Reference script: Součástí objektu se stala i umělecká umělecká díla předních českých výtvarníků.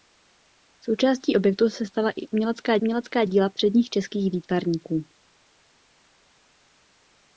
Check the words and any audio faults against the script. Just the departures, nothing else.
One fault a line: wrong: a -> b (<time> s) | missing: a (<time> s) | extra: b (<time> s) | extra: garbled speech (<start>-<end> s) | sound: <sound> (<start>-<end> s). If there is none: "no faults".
no faults